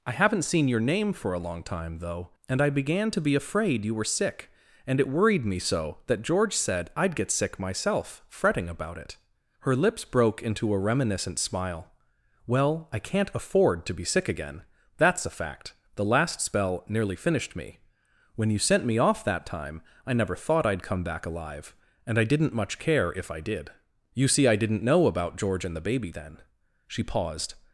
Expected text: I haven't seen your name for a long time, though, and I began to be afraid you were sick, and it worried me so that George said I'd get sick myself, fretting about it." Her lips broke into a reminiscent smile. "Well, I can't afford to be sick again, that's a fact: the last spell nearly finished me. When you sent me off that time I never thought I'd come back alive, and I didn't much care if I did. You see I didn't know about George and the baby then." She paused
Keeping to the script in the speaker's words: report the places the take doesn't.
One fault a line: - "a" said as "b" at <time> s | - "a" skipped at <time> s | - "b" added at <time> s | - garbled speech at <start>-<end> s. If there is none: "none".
none